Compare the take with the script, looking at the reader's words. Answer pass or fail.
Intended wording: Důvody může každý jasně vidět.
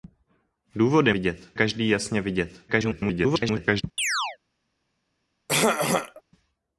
fail